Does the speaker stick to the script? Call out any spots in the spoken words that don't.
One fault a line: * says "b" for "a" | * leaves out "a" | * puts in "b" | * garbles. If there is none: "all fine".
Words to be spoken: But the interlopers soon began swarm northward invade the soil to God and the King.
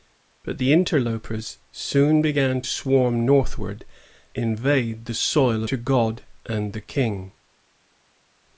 all fine